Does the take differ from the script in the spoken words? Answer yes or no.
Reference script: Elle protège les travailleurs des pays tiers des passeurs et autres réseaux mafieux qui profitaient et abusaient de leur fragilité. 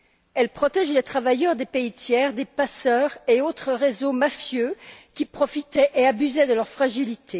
no